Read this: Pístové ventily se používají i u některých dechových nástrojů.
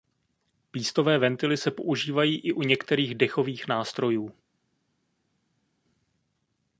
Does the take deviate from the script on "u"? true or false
false